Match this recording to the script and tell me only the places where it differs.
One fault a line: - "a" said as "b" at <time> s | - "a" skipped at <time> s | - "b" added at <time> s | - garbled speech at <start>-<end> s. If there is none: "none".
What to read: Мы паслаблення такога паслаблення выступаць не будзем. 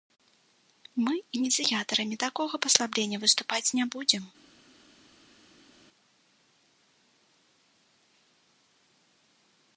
- "паслаблення" said as "ініцыятарамі" at 1.4 s